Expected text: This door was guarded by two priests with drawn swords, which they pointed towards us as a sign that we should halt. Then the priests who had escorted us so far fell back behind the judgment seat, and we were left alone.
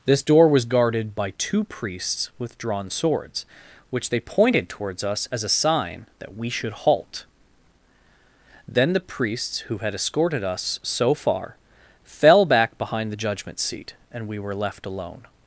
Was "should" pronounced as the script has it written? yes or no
yes